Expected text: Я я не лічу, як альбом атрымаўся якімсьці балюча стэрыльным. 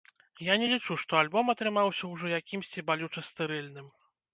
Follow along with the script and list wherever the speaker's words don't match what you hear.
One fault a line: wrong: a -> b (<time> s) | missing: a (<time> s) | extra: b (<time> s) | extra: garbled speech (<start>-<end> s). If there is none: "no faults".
missing: я (0.6 s)
wrong: як -> што (1.0 s)
extra: ўжо (2.2 s)